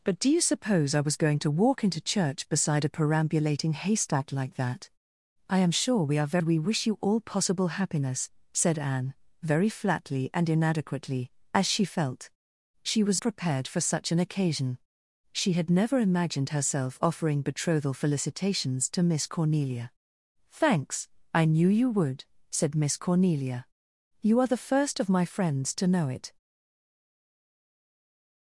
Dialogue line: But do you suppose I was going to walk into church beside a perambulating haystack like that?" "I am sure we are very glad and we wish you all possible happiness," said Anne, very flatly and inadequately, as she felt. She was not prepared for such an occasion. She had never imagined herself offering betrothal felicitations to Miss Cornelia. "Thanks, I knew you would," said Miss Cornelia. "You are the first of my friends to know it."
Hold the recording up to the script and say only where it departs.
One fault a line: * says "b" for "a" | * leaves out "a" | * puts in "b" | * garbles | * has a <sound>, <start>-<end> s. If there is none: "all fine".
* leaves out "very glad and"
* leaves out "not"